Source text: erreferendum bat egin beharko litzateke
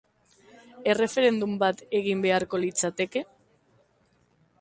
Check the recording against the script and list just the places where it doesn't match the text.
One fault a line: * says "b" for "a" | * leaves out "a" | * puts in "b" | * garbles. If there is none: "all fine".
all fine